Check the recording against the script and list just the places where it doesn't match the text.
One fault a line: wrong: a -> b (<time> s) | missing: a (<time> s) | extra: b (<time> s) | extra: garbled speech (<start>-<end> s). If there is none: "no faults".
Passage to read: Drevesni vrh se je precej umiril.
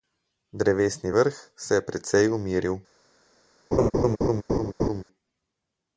no faults